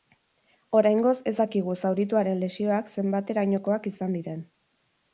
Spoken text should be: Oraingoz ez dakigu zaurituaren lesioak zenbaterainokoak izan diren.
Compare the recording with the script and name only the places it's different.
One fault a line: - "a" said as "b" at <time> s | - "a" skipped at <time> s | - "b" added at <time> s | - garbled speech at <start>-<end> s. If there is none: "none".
none